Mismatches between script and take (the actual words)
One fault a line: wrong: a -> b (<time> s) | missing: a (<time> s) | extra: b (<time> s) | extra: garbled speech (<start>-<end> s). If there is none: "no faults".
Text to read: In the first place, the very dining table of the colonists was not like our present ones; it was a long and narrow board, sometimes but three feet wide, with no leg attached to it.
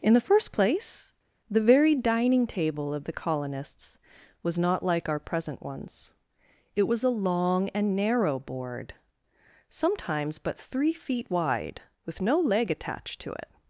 no faults